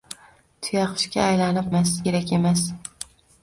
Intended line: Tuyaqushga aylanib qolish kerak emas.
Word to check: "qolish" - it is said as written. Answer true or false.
false